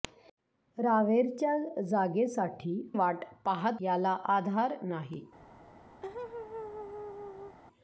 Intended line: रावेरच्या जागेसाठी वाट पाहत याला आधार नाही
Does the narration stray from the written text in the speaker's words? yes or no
no